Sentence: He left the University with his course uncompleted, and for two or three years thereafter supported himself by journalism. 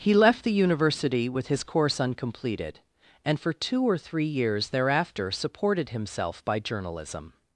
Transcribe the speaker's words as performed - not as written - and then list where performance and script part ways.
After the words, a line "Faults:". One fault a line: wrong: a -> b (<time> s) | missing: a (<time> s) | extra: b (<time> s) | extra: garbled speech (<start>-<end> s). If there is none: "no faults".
He left the University with his course uncompleted, and for two or three years thereafter supported himself by journalism.
Faults:
no faults